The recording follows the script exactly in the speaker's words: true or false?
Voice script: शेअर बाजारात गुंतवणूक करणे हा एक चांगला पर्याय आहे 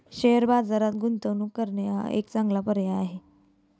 true